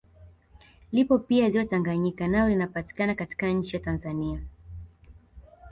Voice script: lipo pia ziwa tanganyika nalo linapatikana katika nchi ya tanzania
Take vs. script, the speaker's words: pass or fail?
pass